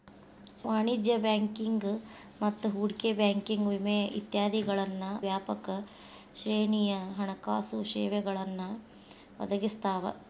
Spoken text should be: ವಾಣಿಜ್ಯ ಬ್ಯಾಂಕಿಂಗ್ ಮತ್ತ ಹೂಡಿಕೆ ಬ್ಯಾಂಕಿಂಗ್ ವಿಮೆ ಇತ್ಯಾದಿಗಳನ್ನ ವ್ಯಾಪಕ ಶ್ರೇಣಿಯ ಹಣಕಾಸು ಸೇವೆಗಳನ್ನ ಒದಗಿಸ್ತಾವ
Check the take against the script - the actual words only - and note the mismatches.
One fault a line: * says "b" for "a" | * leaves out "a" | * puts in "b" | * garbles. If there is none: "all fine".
all fine